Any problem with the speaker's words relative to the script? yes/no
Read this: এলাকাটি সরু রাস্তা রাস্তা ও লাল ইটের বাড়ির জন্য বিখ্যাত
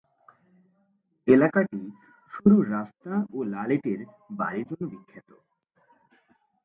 yes